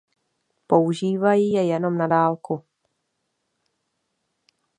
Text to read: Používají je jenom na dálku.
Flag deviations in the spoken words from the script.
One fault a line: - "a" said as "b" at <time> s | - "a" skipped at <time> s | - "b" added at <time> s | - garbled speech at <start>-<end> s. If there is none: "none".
none